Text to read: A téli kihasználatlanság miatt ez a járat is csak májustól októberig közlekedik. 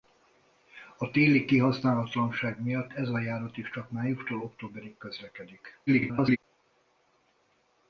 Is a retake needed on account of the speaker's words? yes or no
yes